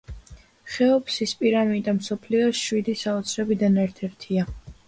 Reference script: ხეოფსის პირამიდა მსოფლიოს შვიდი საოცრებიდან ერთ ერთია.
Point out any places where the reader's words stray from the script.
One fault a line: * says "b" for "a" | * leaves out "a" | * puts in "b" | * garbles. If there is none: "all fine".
all fine